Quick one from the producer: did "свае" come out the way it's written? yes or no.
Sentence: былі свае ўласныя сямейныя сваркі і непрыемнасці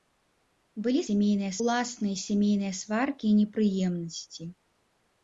no